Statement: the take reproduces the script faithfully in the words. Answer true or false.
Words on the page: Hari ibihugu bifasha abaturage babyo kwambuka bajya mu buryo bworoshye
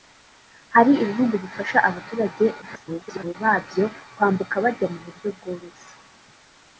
false